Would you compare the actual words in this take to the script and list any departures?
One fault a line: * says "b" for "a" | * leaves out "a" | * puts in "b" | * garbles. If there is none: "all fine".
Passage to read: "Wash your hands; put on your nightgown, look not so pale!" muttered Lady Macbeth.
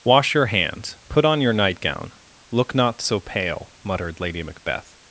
all fine